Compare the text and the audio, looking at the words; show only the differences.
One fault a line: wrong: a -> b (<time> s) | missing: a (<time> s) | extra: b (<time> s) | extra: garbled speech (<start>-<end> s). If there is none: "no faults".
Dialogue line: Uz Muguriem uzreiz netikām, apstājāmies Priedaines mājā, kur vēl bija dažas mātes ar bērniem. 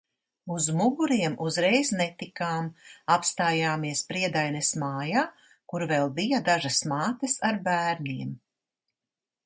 no faults